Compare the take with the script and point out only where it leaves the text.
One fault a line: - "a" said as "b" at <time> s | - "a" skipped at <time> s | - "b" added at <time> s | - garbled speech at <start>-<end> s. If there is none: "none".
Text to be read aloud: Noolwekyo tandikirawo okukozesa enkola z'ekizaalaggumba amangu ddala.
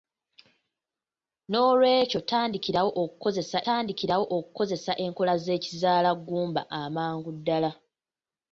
- "tandikirawo okukozesa" added at 3.6 s